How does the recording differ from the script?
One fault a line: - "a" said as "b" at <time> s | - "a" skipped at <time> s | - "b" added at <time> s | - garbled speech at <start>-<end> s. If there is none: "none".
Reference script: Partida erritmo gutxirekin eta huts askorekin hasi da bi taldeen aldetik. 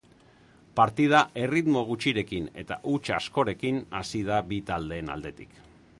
none